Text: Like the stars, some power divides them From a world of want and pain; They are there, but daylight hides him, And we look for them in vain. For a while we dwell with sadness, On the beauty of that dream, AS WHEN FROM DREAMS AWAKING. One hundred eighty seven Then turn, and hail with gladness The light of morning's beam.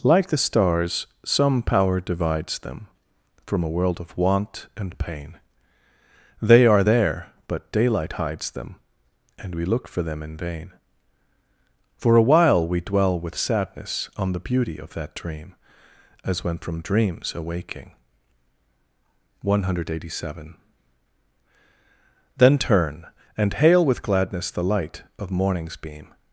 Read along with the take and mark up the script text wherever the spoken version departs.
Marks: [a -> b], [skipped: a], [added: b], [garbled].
Like the stars, some power divides them From a world of want and pain; They are there, but daylight hides [him, -> them] And we look for them in vain. For a while we dwell with sadness, On the beauty of that dream, AS WHEN FROM DREAMS AWAKING. One hundred eighty seven Then turn, and hail with gladness The light of morning's beam.